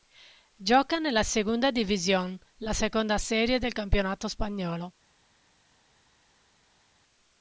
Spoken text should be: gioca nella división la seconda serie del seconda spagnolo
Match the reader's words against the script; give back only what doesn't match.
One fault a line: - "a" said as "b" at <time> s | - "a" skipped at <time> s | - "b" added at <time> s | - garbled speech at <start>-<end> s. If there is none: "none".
- "segunda" added at 1.2 s
- "seconda" said as "campionato" at 3.7 s